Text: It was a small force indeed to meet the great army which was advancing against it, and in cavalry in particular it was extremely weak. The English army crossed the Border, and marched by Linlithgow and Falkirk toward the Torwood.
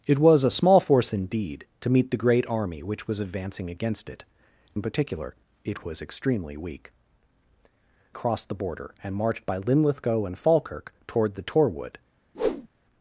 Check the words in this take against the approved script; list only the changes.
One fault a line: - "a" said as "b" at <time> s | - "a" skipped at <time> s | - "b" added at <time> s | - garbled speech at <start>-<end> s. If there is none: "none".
- "and" skipped at 4.2 s
- "cavalry in" skipped at 4.8 s
- "The English army" skipped at 6.9 s